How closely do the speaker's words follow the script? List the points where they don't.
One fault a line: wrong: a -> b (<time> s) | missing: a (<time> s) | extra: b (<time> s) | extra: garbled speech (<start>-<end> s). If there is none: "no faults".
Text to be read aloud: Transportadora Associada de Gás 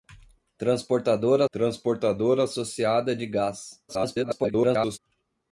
extra: transportadora (1.5 s)
extra: garbled speech (3.9-5.0 s)